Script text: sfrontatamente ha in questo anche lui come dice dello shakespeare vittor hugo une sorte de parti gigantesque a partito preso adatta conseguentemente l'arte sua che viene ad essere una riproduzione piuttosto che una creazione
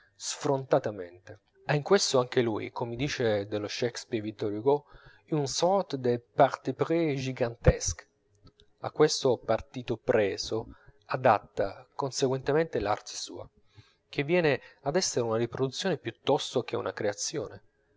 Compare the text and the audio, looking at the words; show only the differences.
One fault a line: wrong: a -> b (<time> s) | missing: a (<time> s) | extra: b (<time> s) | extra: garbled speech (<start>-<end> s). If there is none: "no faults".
extra: pris (6.7 s)
extra: questo (8.9 s)